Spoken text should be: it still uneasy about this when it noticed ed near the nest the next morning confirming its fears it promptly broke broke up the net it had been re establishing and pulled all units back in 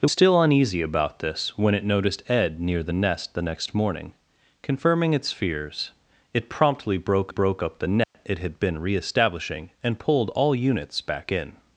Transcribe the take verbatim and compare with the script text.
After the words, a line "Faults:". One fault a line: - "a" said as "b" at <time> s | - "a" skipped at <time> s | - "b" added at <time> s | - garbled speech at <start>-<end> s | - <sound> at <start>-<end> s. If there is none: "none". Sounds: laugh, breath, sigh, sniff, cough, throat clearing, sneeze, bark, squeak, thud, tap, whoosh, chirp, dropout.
it still uneasy about this when it noticed ed near the nest the next morning confirming its fears it promptly broke broke up the net it had been re establishing and pulled all units back in
Faults:
- dropout at 8.0-8.1 s